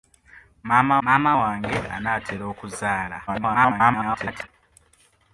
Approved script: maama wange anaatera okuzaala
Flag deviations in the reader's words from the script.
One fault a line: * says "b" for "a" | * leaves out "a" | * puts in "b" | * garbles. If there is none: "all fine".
* puts in "maama"
* garbles